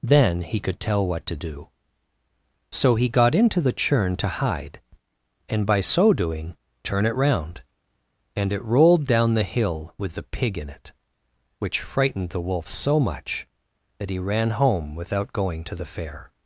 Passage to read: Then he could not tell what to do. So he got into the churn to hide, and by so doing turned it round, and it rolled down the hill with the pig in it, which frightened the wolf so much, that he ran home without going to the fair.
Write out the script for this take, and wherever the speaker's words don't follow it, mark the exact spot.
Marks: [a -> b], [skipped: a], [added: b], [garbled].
Then he could [skipped: not] tell what to do. So he got into the churn to hide, and by so doing [turned -> turn] it round, and it rolled down the hill with the pig in it, which frightened the wolf so much, that he ran home without going to the fair.